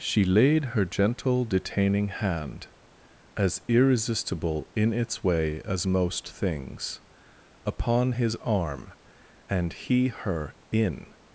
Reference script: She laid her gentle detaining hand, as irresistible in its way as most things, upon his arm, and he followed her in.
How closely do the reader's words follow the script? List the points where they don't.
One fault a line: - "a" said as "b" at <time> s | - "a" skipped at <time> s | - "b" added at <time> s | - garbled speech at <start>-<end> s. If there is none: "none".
- "followed" skipped at 10.1 s